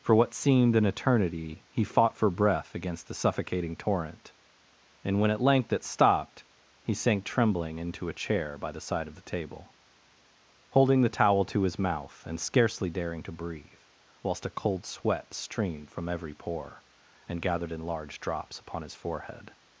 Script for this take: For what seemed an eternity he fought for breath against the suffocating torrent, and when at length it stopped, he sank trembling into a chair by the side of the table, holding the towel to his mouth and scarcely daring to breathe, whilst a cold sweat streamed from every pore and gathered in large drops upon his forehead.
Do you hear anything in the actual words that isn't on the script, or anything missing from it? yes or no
no